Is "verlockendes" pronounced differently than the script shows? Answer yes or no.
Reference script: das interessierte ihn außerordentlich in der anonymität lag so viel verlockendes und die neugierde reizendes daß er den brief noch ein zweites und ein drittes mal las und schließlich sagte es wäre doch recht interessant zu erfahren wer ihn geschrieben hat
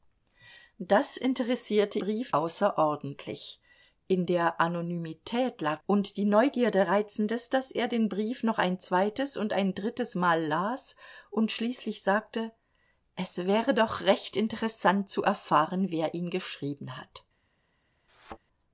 yes